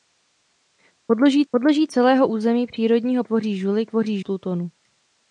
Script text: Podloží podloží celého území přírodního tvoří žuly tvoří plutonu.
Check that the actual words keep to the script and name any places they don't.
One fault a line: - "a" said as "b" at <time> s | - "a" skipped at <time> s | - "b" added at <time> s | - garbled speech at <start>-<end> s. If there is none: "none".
none